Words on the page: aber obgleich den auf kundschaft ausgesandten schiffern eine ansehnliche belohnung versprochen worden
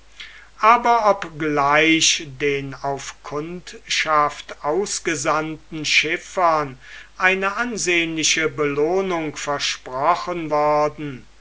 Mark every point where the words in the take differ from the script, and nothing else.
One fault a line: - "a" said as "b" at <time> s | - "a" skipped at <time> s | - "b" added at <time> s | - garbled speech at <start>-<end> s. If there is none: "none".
none